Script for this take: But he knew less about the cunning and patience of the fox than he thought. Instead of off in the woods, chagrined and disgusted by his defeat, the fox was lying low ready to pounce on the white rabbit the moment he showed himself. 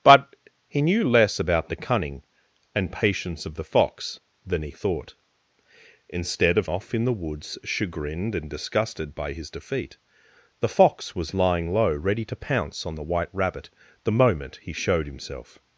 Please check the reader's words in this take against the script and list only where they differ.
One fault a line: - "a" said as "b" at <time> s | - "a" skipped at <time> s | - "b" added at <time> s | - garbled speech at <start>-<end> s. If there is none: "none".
none